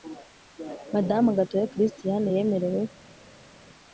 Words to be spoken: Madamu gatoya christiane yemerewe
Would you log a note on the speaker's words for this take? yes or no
no